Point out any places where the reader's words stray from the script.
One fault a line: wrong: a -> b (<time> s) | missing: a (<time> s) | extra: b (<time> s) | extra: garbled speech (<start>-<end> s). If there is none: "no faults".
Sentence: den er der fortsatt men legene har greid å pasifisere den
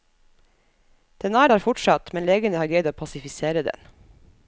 no faults